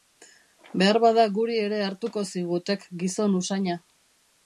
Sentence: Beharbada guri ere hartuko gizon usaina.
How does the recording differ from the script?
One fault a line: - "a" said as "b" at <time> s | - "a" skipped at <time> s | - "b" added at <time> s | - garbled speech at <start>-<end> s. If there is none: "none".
- "zigutek" added at 2.3 s